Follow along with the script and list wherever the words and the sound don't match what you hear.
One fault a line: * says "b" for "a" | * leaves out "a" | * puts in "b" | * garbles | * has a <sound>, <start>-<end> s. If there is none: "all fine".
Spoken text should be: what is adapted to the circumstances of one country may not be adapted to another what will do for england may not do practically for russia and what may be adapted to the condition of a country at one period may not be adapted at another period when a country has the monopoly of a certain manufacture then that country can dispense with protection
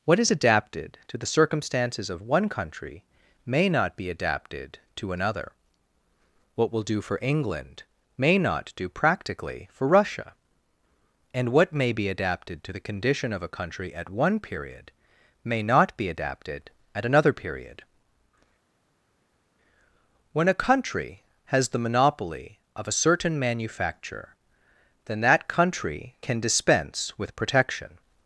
all fine